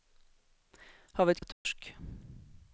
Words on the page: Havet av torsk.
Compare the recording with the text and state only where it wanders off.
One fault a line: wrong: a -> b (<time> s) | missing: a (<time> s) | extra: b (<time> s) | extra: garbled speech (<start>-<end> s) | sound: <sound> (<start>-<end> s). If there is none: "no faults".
sound: dropout (1.5-1.7 s)